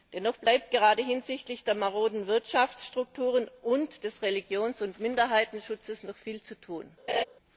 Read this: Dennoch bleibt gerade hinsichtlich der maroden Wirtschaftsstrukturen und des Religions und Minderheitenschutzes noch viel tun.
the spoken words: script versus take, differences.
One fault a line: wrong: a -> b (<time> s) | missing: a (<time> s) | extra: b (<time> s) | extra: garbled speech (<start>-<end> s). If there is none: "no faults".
extra: zu (6.4 s)